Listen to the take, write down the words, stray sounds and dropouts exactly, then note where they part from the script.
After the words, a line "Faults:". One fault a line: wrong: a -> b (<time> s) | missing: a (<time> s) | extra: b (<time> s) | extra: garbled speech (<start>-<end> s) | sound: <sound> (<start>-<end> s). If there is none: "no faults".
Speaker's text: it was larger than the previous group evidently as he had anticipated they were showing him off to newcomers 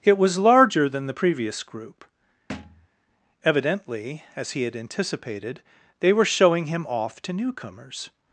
it was larger than the previous group evidently as he had anticipated they were showing him off to newcomers
Faults:
sound: thud (2.5-2.9 s)